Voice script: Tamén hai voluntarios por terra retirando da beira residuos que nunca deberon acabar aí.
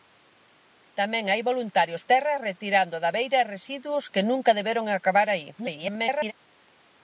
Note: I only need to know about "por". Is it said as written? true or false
false